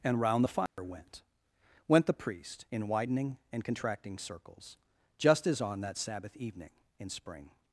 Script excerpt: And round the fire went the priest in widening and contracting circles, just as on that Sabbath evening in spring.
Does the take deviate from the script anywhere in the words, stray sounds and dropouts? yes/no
yes